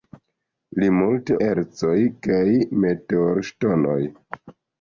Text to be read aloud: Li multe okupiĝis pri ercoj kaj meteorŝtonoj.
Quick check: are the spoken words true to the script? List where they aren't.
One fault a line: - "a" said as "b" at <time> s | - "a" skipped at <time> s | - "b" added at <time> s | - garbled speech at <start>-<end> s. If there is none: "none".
- "okupiĝis pri" skipped at 1.4 s